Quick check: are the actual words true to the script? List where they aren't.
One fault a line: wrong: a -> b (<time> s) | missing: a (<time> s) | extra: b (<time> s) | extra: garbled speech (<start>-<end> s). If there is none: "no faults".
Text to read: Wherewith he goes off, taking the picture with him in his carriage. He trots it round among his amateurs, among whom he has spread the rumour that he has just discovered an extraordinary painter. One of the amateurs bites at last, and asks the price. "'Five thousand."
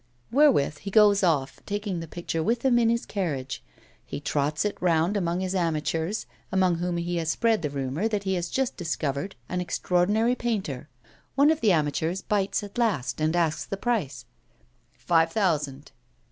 no faults